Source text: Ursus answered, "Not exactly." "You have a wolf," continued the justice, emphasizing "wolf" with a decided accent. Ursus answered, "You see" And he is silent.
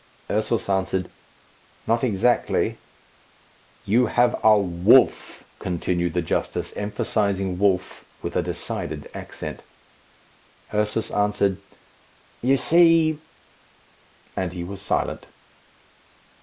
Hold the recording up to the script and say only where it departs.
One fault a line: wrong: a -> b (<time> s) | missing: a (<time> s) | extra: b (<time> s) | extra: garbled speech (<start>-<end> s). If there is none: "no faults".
wrong: is -> was (14.6 s)